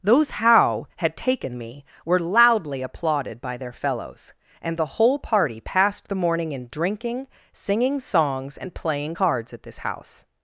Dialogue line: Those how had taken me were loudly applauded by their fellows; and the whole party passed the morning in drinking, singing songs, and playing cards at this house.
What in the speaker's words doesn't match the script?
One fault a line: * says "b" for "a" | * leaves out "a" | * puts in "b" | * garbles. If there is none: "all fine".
all fine